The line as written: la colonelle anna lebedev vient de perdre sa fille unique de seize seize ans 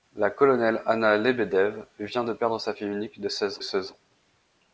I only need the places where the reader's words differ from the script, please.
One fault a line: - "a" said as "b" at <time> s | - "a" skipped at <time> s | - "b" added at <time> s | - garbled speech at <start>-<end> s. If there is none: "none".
none